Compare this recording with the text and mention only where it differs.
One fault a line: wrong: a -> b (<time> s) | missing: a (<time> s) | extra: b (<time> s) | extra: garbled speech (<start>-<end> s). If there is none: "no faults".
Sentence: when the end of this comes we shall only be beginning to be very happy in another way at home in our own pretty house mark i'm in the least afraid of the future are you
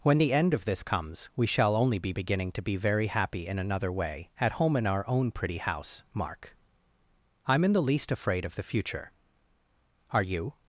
no faults